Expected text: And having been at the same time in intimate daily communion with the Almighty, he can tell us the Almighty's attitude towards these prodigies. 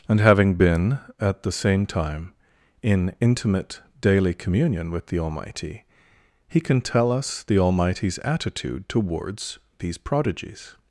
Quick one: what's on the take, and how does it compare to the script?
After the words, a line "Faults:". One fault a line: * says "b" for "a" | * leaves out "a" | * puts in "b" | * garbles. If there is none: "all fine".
And having been at the same time in intimate daily communion with the Almighty, he can tell us the Almighty's attitude towards these prodigies.
Faults:
all fine